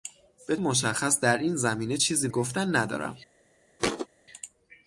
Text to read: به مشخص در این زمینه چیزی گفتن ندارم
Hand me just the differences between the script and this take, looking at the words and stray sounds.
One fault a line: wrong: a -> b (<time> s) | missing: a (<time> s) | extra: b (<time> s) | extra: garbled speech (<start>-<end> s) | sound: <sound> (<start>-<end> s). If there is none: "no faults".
sound: thud (3.8-4.1 s)